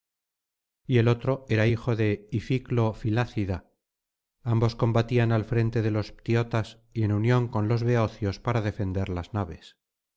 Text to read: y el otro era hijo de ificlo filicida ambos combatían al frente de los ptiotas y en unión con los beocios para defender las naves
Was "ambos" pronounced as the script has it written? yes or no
yes